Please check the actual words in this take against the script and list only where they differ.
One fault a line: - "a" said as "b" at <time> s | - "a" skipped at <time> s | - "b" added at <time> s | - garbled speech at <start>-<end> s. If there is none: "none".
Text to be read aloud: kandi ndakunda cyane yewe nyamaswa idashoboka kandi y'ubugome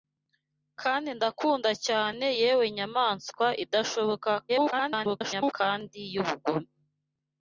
- garbled speech at 4.5-5.5 s